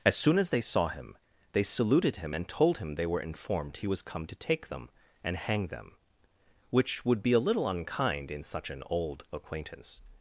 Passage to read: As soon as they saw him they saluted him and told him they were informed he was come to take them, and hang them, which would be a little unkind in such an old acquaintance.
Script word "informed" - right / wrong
right